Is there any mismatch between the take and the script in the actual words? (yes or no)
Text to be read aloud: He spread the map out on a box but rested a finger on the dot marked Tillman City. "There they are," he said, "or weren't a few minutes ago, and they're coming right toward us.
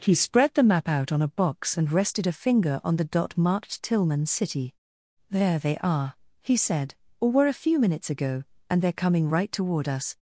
yes